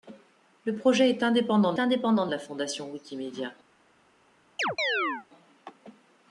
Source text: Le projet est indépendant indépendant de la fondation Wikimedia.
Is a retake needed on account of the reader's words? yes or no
no